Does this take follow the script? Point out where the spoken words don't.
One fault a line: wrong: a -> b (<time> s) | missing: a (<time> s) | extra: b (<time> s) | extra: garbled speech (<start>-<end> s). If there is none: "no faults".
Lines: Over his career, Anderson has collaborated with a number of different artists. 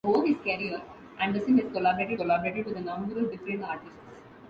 extra: collaborated (2.1 s)